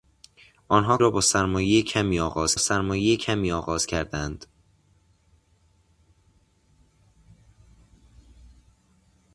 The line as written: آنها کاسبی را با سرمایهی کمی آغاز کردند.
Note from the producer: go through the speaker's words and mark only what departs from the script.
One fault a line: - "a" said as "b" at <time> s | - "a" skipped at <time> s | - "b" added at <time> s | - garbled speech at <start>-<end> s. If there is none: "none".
- "کاسبی" skipped at 1.0 s
- "سرمایهی کمی آغاز" added at 2.6 s